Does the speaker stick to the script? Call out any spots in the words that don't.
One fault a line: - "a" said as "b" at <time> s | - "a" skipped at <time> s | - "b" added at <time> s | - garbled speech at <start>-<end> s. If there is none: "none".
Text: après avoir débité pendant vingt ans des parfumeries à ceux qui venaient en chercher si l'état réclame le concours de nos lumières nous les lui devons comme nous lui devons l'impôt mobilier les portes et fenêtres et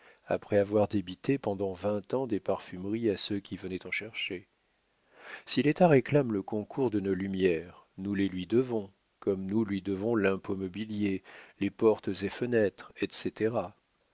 none